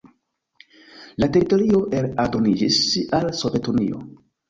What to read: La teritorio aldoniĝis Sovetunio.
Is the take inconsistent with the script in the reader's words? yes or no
yes